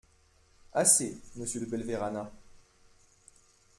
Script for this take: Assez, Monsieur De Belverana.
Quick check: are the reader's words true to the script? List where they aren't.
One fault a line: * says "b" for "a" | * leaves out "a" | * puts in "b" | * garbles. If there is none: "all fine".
all fine